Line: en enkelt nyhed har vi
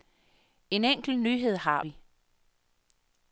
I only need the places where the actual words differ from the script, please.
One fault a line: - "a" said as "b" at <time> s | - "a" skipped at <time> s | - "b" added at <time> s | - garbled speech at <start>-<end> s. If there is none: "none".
none